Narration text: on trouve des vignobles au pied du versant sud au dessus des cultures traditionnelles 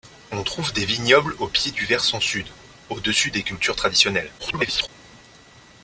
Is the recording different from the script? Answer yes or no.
yes